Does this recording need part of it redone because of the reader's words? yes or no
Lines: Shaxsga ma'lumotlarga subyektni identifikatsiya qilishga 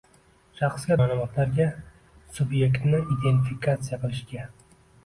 no